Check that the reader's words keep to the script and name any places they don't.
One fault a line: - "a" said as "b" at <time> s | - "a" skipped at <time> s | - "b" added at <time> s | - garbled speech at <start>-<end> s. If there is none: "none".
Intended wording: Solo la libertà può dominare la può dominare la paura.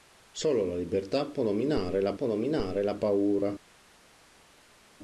none